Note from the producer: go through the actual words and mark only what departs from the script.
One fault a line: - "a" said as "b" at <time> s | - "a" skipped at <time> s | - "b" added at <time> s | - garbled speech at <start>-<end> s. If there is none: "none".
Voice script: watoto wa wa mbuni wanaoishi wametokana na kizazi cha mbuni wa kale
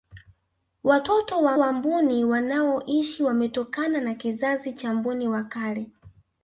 none